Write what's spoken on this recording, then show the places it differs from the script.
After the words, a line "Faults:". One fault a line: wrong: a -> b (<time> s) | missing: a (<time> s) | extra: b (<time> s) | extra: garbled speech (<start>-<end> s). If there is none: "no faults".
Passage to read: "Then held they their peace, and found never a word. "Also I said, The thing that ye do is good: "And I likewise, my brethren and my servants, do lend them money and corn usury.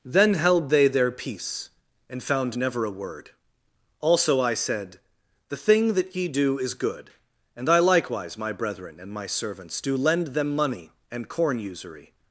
"Then held they their peace, and found never a word. "Also I said, The thing that ye do is good: "And I likewise, my brethren and my servants, do lend them money and corn usury.
Faults:
no faults